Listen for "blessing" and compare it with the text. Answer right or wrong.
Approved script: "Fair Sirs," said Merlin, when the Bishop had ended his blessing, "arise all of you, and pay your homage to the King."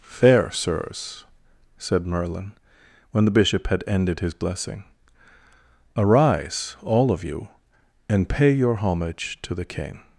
right